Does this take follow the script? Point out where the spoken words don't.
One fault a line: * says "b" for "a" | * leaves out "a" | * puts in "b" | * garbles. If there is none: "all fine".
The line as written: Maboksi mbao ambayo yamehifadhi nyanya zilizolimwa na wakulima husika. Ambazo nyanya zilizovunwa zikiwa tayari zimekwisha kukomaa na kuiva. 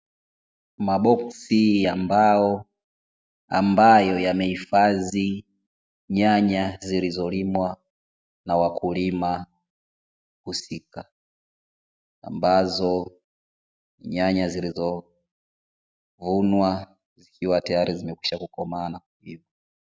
* puts in "ya"